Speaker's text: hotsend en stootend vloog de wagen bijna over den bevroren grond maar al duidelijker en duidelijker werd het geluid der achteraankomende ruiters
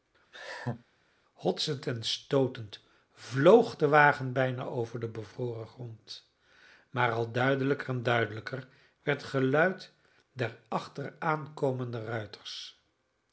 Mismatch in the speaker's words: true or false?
true